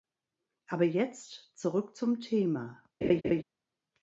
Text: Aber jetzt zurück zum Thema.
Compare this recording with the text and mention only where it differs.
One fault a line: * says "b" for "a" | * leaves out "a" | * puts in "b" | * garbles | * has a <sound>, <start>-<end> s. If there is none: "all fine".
* has a laugh, 3.0-3.4 s